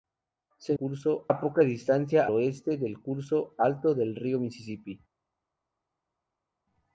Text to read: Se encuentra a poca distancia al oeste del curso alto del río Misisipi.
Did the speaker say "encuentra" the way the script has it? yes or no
no